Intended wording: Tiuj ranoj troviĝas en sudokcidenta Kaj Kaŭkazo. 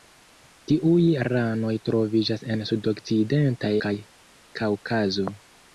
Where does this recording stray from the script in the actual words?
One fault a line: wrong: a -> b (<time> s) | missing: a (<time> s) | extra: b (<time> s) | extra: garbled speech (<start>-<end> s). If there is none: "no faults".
no faults